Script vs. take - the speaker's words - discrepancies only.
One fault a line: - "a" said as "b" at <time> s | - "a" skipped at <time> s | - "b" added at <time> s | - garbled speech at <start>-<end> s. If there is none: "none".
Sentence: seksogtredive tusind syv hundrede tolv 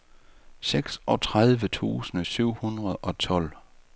- "og" added at 3.0 s